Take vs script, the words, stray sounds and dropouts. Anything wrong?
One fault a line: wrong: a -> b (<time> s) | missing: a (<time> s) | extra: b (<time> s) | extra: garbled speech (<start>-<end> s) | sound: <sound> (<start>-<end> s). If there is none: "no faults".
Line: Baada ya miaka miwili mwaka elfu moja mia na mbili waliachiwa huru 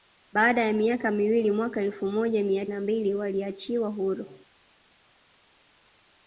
no faults